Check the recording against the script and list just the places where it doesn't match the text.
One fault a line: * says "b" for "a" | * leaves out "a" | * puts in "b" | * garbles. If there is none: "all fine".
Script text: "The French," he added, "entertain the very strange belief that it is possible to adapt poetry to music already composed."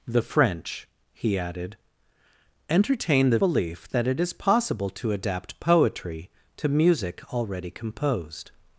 * leaves out "very strange"